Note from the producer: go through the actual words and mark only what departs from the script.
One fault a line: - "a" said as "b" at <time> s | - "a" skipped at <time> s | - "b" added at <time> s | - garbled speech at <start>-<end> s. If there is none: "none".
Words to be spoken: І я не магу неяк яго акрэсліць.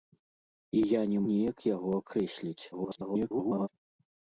- "магу" skipped at 1.2 s
- garbled speech at 2.7-3.7 s